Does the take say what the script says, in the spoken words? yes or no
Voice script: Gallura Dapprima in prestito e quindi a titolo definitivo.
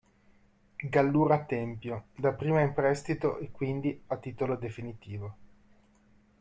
no